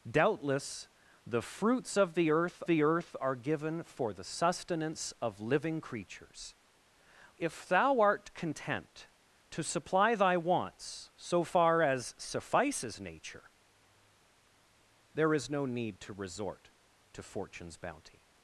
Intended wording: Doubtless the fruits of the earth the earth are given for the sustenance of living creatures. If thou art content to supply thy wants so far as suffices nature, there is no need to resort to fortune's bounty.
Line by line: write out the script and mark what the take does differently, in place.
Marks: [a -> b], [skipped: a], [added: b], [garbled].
Doubtless the fruits of the earth the earth are given for the sustenance of living creatures. If thou art content to supply thy wants so far as suffices nature, there is no need to resort to fortune's bounty.